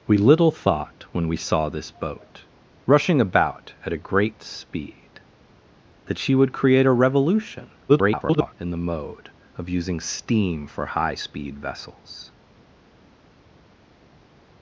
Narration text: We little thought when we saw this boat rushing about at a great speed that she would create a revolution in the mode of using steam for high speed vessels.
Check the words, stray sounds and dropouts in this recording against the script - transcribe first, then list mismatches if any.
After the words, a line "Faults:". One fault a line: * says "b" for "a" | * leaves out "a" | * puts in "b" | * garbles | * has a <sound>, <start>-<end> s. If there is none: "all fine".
We little thought when we saw this boat rushing about at a great speed that she would create a revolution [garbled] in the mode of using steam for high speed vessels.
Faults:
* garbles